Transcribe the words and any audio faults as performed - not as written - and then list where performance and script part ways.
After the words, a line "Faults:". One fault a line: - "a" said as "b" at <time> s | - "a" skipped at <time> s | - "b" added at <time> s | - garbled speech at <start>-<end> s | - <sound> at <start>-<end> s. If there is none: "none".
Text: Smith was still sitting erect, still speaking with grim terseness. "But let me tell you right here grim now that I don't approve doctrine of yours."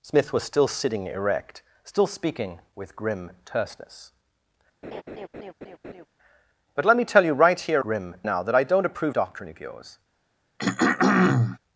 Smith was still sitting erect, still speaking with grim terseness. "But let me tell you right here grim now that I don't approve doctrine of yours."
Faults:
- laugh at 4.8-6.1 s
- throat clearing at 10.6-11.6 s